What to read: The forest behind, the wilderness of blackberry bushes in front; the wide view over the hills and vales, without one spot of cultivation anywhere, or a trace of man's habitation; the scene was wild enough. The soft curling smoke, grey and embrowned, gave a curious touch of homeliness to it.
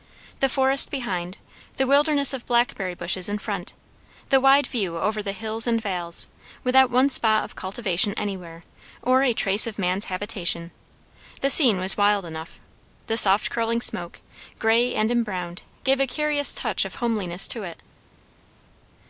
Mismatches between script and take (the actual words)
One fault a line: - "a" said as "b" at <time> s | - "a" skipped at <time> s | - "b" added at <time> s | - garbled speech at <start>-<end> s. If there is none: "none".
none